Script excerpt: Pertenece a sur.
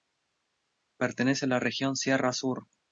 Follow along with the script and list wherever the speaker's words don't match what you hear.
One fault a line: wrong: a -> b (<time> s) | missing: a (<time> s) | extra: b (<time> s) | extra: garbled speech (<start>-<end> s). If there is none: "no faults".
extra: la región sierra (1.5 s)